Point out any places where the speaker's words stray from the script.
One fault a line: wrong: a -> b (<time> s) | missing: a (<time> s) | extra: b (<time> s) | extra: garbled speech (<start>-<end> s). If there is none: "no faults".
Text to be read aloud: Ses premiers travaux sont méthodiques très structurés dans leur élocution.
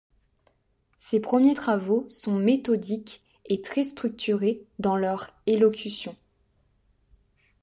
extra: et (3.4 s)